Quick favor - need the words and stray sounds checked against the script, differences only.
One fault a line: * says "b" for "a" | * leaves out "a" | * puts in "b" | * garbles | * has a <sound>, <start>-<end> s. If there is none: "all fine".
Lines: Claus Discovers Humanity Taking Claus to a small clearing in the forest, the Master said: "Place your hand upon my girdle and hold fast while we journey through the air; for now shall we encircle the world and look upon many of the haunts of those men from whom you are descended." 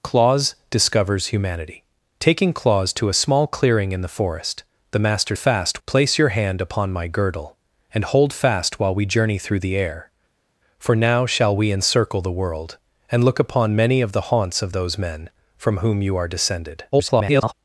* says "fast" for "said"
* garbles